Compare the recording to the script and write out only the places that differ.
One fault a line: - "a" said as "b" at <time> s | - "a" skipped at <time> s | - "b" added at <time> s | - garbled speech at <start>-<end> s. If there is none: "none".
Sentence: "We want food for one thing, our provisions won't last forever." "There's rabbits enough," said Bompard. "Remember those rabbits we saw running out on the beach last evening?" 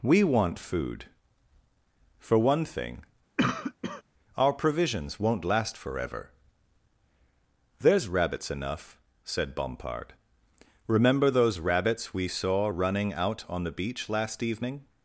none